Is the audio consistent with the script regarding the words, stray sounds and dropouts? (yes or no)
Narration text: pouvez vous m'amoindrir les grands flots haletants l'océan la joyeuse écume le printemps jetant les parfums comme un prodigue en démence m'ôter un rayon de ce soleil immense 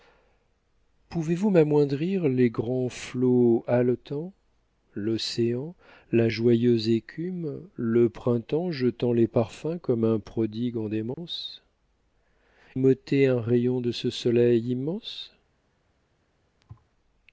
no